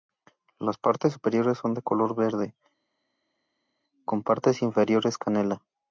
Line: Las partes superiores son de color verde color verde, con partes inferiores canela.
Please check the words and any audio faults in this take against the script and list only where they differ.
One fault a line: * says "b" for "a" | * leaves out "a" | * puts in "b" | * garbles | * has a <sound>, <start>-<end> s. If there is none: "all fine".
* leaves out "color verde"